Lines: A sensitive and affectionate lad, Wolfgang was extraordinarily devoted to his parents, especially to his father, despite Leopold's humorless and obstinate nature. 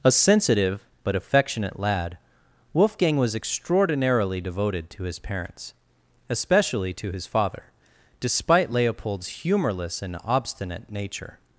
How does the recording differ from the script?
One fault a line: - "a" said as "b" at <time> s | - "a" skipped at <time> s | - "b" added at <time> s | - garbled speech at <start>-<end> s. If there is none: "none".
- "and" said as "but" at 1.0 s